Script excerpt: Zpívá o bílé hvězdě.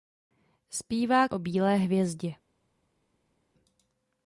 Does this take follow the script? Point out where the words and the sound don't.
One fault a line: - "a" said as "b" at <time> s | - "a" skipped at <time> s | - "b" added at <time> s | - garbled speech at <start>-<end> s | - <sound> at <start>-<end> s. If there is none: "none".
none